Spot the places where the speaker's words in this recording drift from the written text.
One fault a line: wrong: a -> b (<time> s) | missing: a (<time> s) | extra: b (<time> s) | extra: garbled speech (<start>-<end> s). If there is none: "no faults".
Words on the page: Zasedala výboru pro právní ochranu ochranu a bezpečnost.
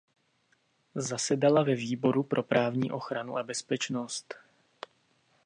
extra: ve (1.6 s)
missing: ochranu (3.4 s)